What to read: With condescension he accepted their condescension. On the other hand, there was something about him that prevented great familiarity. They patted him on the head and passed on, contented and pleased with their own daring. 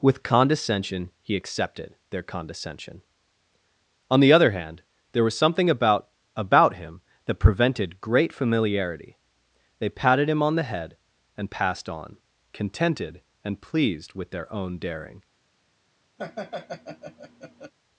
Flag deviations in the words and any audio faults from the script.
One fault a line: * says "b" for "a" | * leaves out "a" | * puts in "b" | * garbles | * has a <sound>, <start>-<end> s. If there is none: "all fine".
* puts in "about"
* has a laugh, 16.2-17.7 s